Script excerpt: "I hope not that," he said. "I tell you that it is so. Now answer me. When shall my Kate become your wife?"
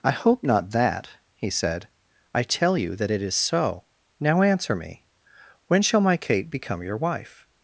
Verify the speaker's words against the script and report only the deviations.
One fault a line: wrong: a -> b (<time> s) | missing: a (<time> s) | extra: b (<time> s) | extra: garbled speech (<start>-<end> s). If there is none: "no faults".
no faults